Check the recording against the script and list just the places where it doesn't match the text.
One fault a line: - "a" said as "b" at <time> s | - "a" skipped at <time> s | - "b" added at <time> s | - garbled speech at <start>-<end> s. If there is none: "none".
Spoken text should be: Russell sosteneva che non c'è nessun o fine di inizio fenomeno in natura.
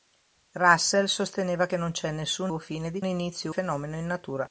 none